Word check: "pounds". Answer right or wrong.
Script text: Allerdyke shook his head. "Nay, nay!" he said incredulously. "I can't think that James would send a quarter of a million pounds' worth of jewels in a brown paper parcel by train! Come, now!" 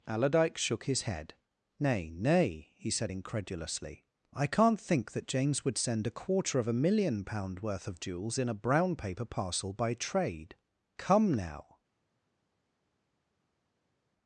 wrong